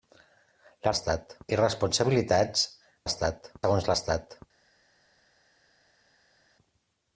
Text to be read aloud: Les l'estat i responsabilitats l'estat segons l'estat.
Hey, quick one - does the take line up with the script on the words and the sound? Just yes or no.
yes